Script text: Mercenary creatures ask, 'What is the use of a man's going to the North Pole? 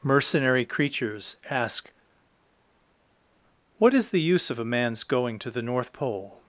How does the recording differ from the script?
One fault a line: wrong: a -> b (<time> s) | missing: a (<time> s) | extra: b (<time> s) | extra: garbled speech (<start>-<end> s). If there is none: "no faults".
no faults